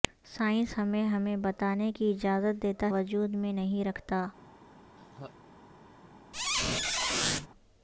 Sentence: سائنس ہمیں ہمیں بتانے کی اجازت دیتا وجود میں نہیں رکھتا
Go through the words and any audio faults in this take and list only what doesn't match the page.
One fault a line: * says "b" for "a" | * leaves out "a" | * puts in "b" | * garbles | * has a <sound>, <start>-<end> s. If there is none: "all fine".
* has a laugh, 5.0-5.4 s
* has a squeak, 6.3-7.5 s